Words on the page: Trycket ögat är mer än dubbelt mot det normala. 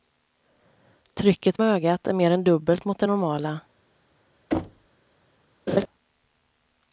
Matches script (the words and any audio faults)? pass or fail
fail